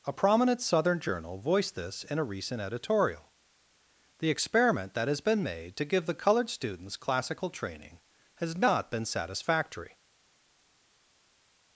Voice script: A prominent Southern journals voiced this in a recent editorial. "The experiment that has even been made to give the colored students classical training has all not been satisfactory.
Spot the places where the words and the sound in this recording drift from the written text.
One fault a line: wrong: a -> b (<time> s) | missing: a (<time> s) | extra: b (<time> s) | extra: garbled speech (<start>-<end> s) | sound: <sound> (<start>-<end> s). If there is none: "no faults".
wrong: journals -> journal (1.0 s)
missing: even (5.2 s)
missing: all (8.5 s)